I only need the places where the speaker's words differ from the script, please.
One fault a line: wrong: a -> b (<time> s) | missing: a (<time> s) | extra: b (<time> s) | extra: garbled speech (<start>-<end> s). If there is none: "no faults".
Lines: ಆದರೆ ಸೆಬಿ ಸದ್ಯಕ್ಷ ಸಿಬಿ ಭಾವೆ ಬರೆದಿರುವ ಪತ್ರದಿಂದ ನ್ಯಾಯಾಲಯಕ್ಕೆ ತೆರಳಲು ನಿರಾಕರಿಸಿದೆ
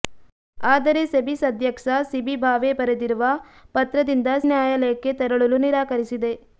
no faults